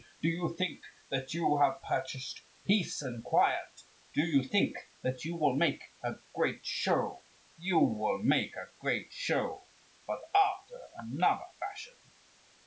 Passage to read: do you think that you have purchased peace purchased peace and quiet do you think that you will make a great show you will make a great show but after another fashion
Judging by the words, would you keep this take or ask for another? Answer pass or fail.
fail